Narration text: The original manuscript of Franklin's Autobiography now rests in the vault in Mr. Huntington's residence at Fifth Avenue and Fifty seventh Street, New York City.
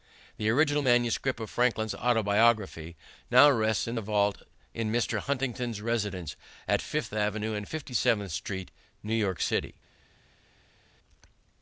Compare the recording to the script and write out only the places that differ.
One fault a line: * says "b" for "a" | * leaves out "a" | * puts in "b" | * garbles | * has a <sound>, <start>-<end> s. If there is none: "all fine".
all fine